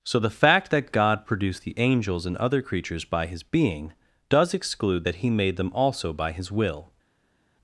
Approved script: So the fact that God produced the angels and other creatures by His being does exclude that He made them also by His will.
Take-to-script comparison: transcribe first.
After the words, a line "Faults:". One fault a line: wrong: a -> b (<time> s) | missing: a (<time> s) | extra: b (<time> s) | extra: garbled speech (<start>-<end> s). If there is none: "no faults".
So the fact that God produced the angels and other creatures by His being does exclude that He made them also by His will.
Faults:
no faults